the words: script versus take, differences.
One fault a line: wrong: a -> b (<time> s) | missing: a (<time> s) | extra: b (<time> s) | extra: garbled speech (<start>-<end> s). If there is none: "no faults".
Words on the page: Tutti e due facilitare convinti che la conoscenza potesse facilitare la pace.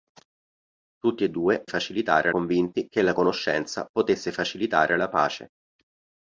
no faults